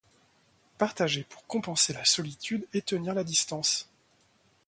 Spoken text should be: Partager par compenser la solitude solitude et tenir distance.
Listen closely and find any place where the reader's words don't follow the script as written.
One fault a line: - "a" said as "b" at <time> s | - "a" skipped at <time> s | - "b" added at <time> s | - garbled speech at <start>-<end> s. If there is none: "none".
- "par" said as "pour" at 1.3 s
- "solitude" skipped at 2.6 s
- "la" added at 3.1 s